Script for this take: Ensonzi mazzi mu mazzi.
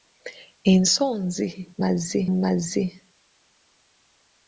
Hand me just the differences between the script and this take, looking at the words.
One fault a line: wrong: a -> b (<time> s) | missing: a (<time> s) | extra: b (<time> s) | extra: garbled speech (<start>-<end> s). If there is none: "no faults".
no faults